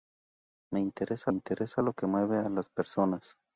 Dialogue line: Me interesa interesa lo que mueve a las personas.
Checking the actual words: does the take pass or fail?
pass